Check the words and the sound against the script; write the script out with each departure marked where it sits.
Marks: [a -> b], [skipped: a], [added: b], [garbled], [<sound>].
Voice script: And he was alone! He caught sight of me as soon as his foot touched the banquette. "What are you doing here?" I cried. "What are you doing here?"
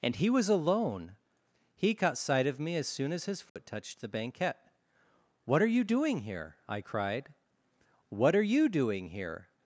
And he was alone! He caught sight of me as soon as his foot [dropout] touched the banquette. "What are you doing here?" I cried. "What are you doing here?"